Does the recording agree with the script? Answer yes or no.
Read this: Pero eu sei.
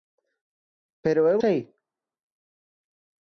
yes